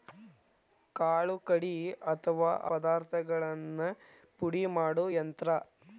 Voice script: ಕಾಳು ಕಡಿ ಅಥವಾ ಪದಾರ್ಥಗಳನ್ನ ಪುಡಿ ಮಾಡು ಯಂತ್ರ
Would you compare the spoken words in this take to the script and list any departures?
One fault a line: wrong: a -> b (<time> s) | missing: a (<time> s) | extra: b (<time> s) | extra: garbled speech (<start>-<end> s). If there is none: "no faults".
no faults